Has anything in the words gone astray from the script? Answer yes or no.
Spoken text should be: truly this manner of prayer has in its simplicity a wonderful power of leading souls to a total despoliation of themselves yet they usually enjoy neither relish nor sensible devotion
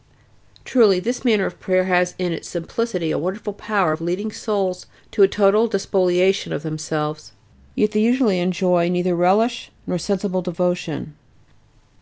no